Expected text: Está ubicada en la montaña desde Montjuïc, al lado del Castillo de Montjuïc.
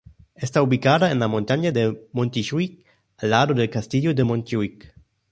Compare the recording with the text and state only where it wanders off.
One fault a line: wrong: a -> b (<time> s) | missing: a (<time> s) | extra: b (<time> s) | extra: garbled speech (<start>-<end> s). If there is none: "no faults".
wrong: desde -> de (1.7 s)